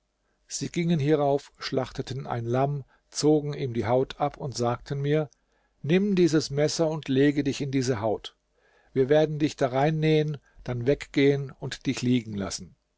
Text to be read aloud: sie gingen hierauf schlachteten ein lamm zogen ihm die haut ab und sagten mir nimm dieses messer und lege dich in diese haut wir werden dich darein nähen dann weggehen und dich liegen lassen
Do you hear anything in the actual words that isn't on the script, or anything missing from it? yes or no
no